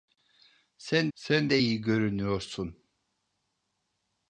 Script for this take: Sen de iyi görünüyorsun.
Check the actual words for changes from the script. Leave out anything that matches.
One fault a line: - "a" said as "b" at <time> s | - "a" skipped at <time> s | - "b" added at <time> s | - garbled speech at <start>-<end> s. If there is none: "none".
- "sen" added at 1.1 s